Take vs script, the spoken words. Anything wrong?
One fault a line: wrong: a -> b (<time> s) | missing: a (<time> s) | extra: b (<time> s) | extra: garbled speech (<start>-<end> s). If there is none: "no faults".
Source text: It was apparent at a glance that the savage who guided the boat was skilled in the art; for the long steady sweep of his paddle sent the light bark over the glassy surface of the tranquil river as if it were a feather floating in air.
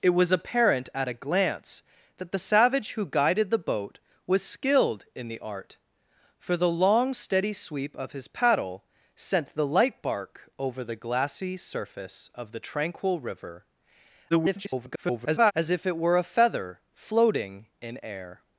extra: garbled speech (14.3-15.5 s)